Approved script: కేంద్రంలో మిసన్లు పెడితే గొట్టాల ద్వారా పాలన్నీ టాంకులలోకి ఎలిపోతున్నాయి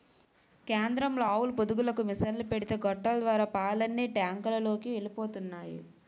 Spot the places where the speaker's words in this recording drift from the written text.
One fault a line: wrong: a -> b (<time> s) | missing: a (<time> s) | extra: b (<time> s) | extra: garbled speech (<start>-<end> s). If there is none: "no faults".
extra: ఆవుల పొదుగులకు (1.3 s)